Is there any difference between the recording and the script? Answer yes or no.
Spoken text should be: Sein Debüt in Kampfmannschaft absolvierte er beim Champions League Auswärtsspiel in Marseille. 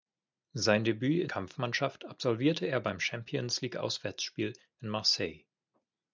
no